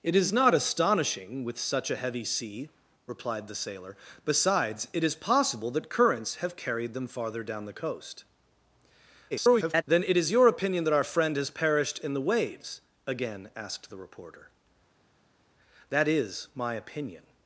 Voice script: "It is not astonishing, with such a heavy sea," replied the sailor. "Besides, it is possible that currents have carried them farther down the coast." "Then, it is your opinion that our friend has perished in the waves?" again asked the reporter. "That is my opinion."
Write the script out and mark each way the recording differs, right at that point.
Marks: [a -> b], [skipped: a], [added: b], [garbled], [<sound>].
"It is not astonishing, with such a heavy sea," replied the sailor. "Besides, it is possible that currents have carried them farther down the coast." [garbled] "Then, it is your opinion that our friend has perished in the waves?" again asked the reporter. "That is my opinion."